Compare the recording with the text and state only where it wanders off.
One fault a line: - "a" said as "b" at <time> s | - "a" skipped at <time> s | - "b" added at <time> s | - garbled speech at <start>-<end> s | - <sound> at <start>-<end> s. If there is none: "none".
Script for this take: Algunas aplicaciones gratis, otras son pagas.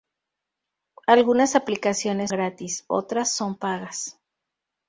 none